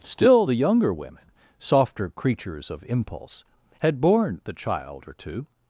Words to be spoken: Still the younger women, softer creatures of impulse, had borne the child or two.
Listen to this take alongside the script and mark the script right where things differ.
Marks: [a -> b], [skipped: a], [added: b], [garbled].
Still the younger women, softer creatures of impulse, had borne the child or two.